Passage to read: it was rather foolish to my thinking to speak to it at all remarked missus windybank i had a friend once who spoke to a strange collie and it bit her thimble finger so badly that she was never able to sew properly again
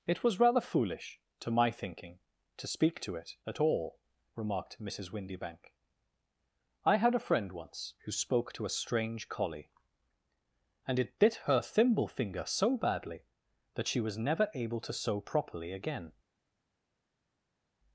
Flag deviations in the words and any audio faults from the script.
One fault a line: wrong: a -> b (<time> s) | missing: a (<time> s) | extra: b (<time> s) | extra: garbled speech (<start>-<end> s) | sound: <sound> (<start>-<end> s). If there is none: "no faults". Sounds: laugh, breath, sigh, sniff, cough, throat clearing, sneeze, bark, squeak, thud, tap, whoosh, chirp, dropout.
no faults